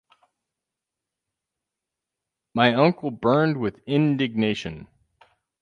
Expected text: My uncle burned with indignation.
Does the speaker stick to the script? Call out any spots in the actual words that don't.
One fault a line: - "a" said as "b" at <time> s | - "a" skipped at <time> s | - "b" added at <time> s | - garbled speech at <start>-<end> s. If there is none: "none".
none